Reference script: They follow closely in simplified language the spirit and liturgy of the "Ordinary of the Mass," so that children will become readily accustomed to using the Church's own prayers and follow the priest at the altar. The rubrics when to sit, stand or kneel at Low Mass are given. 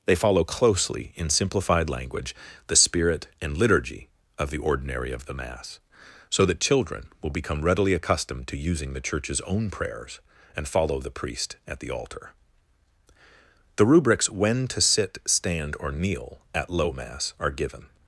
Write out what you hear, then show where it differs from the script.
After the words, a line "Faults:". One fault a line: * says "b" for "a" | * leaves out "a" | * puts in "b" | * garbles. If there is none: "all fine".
They follow closely in simplified language the spirit and liturgy of the "Ordinary of the Mass," so that children will become readily accustomed to using the Church's own prayers and follow the priest at the altar. The rubrics when to sit, stand or kneel at Low Mass are given.
Faults:
all fine